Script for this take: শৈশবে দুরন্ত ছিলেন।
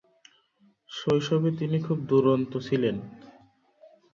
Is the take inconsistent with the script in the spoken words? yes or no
yes